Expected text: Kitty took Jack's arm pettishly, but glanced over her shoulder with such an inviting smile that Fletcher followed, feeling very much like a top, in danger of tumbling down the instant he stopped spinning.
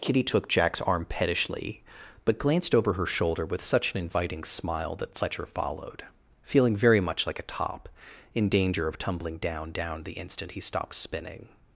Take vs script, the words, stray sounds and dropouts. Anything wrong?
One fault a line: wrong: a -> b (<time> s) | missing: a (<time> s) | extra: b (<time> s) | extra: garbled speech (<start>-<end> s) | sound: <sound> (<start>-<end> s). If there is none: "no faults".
extra: down (9.7 s)